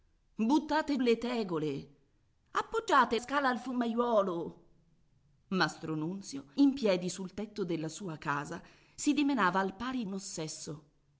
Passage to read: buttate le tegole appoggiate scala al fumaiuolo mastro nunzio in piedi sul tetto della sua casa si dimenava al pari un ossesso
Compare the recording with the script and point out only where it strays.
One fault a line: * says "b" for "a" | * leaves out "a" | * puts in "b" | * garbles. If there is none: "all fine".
all fine